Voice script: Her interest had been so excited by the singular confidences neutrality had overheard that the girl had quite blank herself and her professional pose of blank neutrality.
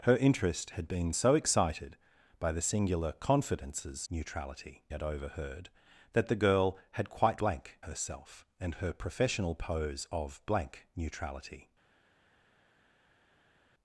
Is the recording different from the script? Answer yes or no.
no